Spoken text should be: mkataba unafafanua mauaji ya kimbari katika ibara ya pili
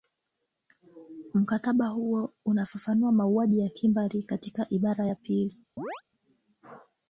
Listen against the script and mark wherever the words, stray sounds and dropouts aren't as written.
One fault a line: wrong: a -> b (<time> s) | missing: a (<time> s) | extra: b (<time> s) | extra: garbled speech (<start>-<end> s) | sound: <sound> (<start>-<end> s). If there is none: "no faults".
extra: huo (1.9 s)
sound: chirp (5.8-6.0 s)